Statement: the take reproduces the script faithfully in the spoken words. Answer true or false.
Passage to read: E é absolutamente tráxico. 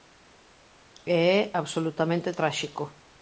true